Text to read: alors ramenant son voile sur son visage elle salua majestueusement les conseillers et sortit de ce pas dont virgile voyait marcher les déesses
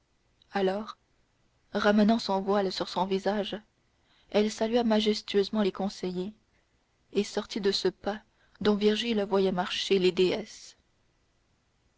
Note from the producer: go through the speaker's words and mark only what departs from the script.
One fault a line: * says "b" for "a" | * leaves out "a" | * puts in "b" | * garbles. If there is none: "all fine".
all fine